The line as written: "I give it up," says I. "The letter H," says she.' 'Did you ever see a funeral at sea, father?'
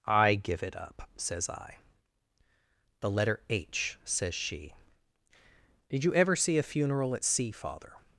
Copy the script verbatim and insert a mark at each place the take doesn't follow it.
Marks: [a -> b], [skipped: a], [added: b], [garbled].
"I give it up," says I. "The letter H," says she.' 'Did you ever see a funeral at sea, father?'